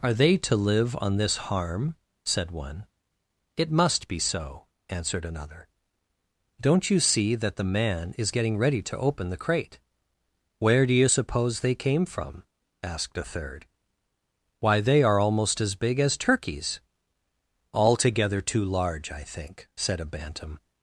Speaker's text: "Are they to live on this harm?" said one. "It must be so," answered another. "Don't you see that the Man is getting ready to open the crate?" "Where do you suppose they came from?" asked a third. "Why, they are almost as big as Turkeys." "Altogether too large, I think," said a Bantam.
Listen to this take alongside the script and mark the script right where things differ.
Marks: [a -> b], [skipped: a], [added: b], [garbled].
"Are they to live on this harm?" said one. "It must be so," answered another. "Don't you see that the Man is getting ready to open the crate?" "Where do you suppose they came from?" asked a third. "Why, they are almost as big as Turkeys." "Altogether too large, I think," said a Bantam.